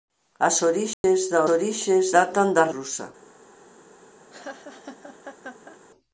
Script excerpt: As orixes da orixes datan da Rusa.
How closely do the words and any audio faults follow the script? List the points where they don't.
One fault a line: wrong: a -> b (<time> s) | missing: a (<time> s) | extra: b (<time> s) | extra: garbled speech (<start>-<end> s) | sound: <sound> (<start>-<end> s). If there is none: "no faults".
sound: dropout (0.9-1.0 s)
sound: laugh (4.3-5.8 s)